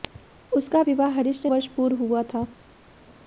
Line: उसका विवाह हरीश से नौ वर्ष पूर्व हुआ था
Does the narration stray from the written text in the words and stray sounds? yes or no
yes